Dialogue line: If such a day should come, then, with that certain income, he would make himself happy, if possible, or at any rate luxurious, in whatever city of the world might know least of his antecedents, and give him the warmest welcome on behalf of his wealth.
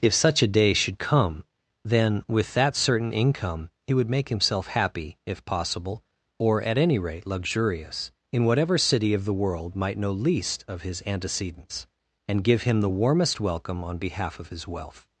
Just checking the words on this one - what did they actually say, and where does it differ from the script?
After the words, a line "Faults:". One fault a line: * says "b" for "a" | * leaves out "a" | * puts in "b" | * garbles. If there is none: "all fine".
If such a day should come, then, with that certain income, he would make himself happy, if possible, or at any rate luxurious, in whatever city of the world might know least of his antecedents, and give him the warmest welcome on behalf of his wealth.
Faults:
all fine